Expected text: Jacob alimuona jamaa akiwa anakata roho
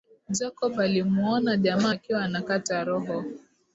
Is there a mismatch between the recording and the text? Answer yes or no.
no